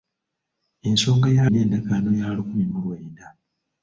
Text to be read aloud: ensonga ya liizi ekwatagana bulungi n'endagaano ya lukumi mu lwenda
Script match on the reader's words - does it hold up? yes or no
no